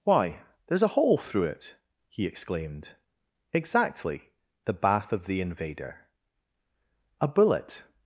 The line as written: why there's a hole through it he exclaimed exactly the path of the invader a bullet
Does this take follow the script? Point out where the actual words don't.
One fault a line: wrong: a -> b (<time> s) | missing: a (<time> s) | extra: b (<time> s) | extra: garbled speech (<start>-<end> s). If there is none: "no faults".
wrong: path -> bath (4.7 s)